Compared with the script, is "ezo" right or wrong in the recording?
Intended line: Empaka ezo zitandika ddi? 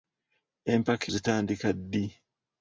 wrong